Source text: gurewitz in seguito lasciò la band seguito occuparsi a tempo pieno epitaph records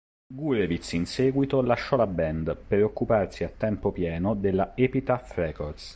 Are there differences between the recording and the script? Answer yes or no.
yes